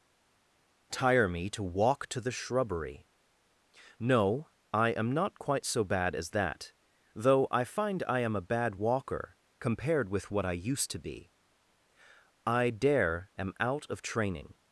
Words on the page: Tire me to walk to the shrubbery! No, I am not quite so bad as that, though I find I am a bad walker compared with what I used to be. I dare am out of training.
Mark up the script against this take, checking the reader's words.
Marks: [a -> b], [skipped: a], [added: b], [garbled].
Tire me to walk to the shrubbery! No, I am not quite so bad as that, though I find I am a bad walker compared with what I used to be. I dare am out of training.